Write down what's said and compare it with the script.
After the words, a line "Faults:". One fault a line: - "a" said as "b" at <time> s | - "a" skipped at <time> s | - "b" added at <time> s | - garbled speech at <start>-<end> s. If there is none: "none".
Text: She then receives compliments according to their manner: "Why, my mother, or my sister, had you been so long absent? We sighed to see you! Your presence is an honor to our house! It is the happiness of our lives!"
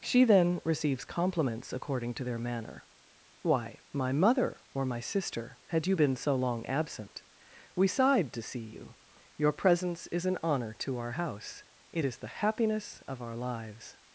She then receives compliments according to their manner: "Why, my mother, or my sister, had you been so long absent? We sighed to see you! Your presence is an honor to our house! It is the happiness of our lives!"
Faults:
none